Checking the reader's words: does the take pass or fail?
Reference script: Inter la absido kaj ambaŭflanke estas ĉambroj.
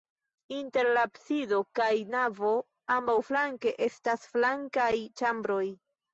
fail